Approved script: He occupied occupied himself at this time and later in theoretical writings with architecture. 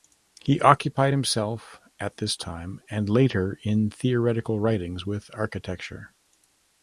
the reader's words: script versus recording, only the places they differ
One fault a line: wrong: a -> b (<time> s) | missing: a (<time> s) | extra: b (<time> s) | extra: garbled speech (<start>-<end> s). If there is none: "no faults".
missing: occupied (1.1 s)